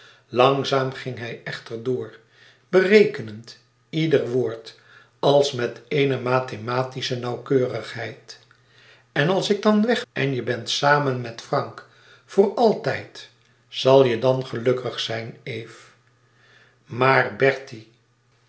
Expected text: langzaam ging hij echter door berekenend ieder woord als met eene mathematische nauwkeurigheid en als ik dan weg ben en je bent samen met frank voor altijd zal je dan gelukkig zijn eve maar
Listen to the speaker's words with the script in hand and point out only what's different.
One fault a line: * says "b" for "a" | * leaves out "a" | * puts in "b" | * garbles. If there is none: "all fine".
* leaves out "ben"